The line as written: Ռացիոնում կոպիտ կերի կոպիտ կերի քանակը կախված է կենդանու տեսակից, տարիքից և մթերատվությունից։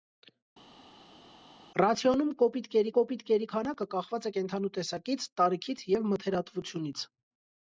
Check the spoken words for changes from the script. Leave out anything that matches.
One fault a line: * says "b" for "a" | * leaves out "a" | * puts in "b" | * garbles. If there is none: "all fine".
all fine